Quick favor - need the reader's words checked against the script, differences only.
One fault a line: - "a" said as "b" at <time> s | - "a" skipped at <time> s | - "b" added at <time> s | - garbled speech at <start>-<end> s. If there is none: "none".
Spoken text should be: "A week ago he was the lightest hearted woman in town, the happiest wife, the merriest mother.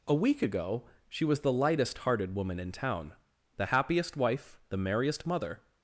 - "he" said as "she" at 1.1 s